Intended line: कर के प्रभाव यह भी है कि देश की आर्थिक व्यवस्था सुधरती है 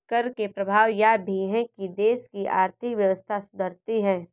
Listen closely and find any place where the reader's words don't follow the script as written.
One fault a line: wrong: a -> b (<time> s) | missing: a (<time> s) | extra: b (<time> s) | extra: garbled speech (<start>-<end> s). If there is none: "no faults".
no faults